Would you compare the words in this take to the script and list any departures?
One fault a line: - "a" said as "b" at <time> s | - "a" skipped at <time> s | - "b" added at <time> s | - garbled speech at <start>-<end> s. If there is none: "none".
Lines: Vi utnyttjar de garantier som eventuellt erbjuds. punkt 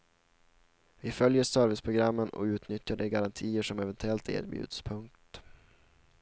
- "följer serviceprogrammen och" added at 1.1 s